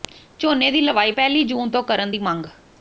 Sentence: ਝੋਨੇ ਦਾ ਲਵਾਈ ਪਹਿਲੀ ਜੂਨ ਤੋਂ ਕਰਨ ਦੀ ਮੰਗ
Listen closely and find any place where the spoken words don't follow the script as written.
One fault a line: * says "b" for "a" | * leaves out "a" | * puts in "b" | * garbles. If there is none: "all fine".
* says "ਦੀ" for "ਦਾ"